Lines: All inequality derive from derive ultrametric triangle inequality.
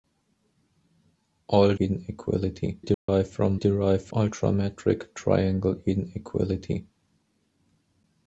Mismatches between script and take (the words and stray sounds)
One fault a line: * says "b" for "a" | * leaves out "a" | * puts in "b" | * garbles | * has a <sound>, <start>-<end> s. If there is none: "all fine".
* has a dropout, 2.9-3.1 s